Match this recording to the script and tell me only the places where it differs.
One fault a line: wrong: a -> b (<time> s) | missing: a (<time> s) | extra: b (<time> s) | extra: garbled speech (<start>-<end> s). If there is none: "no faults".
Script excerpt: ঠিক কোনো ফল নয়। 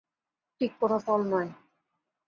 no faults